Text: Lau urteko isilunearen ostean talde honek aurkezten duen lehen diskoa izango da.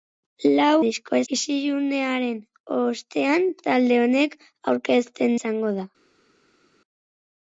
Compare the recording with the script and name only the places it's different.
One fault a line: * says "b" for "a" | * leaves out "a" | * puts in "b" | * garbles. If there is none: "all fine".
* says "diskoa" for "urteko"
* leaves out "duen lehen diskoa"